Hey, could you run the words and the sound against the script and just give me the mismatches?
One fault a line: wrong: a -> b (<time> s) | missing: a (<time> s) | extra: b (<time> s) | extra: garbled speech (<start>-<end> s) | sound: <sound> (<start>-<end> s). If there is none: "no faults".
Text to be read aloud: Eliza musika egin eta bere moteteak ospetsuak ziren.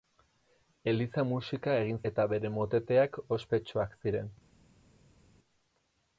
no faults